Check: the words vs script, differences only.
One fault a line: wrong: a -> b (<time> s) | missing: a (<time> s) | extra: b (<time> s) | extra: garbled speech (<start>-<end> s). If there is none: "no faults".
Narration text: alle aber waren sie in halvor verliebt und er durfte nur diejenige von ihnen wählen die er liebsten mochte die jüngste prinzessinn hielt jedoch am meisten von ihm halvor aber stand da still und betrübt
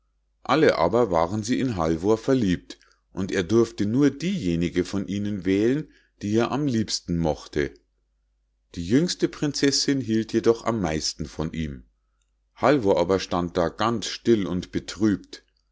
extra: am (6.5 s)
extra: ganz (13.7 s)